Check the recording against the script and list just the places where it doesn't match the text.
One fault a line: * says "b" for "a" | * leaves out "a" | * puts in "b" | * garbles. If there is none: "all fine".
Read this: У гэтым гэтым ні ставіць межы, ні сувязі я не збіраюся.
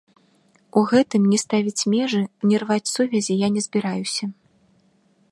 * leaves out "гэтым"
* puts in "рваць"